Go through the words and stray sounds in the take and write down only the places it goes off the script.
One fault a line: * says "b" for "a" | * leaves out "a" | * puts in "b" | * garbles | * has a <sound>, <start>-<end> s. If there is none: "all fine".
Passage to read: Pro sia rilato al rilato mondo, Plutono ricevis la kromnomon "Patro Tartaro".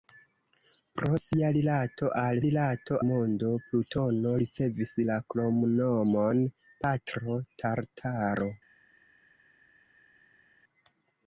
all fine